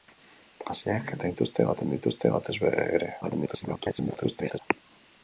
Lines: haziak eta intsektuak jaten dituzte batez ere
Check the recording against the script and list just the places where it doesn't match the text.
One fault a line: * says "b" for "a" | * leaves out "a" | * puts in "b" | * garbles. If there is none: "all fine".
* says "dituzte" for "intsektuak"
* garbles